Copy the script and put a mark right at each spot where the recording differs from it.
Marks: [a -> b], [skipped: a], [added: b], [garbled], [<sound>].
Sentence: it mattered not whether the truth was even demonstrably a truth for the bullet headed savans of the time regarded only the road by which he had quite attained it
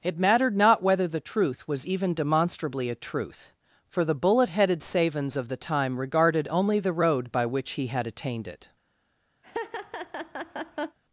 it mattered not whether the truth was even demonstrably a truth for the bullet headed savans of the time regarded only the road by which he had [skipped: quite] attained it [laugh]